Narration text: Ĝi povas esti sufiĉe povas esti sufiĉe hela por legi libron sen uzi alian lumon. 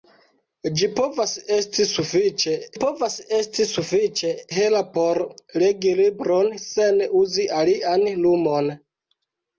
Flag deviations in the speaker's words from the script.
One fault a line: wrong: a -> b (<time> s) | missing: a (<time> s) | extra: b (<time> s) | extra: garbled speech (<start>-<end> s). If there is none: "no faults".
no faults